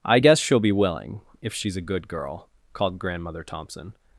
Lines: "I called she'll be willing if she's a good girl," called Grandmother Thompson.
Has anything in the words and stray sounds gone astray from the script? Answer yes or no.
yes